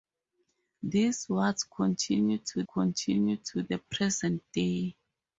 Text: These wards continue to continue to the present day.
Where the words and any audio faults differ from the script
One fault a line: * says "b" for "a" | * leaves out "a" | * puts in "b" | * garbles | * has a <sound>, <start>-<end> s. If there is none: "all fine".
all fine